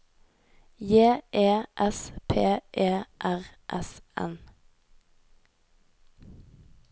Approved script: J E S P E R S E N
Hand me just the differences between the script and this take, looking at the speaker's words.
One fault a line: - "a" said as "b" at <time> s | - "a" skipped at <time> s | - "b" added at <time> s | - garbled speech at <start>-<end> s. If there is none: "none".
- "E" skipped at 4.0 s